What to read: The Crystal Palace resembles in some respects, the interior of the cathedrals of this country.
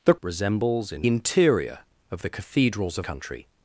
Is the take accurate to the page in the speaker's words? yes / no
no